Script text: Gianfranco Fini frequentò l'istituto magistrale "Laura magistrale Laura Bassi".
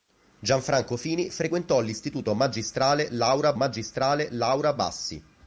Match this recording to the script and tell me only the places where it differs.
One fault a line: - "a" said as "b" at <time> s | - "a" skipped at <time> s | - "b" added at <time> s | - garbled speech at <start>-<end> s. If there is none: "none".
none